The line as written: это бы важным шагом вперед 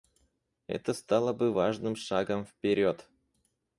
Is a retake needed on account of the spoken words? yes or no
yes